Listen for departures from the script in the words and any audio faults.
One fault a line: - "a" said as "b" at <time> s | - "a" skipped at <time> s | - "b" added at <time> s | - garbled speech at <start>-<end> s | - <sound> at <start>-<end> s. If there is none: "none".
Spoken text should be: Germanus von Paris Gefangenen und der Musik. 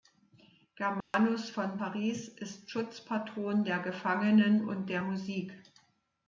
- dropout at 1.0-1.1 s
- "ist Schutzpatron der" added at 2.3 s